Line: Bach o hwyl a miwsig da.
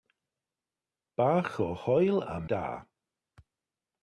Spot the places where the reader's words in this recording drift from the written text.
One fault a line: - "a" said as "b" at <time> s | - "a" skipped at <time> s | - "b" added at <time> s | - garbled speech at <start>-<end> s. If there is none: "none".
- "miwsig" skipped at 2.4 s